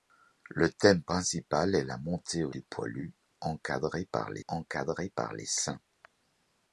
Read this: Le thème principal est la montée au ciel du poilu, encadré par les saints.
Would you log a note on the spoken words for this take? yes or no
yes